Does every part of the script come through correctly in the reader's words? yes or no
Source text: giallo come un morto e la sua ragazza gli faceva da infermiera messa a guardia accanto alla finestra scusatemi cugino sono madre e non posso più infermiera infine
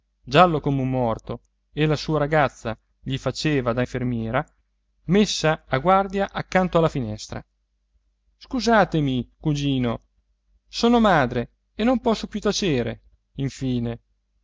no